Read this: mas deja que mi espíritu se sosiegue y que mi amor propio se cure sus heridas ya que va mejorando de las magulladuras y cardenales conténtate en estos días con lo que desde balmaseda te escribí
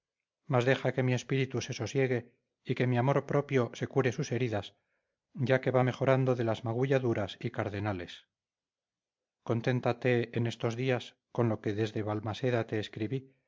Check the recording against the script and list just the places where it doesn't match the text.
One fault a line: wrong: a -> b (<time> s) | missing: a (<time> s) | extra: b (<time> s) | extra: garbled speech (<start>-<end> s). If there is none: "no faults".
no faults